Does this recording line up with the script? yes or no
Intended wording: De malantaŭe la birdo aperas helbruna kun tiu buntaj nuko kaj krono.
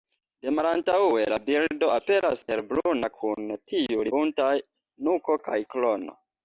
yes